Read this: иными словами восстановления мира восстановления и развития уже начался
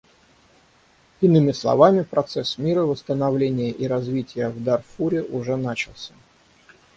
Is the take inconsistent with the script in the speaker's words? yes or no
yes